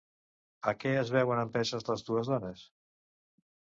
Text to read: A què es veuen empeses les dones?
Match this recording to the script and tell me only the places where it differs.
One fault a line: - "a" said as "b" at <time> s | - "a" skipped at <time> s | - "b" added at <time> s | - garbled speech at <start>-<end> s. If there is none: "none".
- "dues" added at 2.1 s